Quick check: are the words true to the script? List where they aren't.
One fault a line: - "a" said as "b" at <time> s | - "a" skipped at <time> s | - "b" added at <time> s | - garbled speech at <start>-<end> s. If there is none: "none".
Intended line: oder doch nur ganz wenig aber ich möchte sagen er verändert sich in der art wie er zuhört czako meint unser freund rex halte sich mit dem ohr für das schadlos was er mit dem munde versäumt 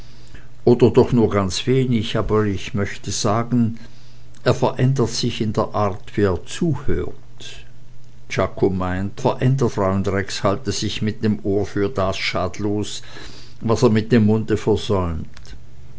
- "unser" said as "verändert" at 9.2 s